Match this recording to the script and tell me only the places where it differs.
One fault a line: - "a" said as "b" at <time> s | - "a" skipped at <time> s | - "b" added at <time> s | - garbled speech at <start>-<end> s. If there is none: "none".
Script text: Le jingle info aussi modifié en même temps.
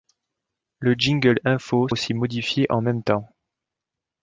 none